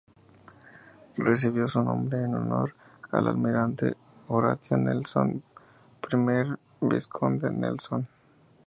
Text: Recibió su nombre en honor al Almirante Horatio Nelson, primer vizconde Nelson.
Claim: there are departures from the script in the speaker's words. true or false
false